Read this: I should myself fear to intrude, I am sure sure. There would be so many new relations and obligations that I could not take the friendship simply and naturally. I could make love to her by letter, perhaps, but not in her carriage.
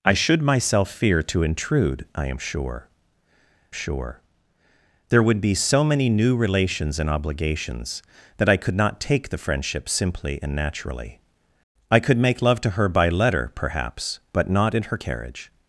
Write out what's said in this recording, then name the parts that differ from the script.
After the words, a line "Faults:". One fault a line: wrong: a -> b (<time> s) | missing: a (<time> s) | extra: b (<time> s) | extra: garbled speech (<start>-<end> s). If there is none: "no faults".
I should myself fear to intrude, I am sure sure. There would be so many new relations and obligations that I could not take the friendship simply and naturally. I could make love to her by letter, perhaps, but not in her carriage.
Faults:
no faults